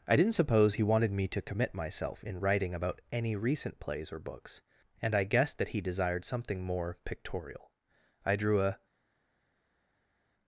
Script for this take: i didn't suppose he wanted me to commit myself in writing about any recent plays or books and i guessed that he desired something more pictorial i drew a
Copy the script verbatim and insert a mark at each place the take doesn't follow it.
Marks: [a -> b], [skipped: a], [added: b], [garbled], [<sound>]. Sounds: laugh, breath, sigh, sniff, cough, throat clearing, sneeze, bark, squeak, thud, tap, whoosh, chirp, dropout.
i didn't suppose he wanted me to commit myself in writing about any recent plays or books and i guessed that he desired something more pictorial i drew a